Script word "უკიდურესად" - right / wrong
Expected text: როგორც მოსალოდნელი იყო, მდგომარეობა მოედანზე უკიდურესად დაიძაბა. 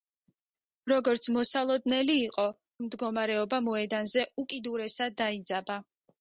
right